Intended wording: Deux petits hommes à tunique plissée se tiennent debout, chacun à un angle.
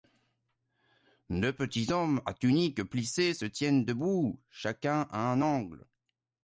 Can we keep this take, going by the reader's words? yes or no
yes